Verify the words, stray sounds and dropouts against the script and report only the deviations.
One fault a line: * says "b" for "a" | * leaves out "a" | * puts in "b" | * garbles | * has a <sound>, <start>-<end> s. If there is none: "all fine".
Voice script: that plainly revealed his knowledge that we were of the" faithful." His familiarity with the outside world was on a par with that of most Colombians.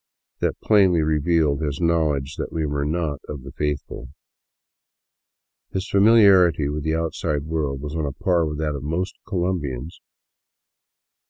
* puts in "not"